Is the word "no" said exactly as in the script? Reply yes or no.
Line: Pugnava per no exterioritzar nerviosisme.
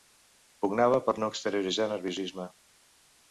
yes